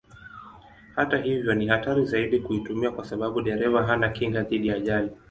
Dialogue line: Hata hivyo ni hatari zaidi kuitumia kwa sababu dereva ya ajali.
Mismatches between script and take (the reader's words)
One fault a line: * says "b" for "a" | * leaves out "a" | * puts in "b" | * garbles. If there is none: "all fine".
* puts in "hana kinga dhidi"